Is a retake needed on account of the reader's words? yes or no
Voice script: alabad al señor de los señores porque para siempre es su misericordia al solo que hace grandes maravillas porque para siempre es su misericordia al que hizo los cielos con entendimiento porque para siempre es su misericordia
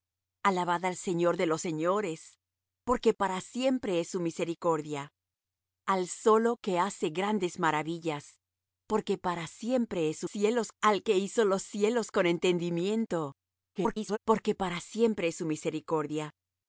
yes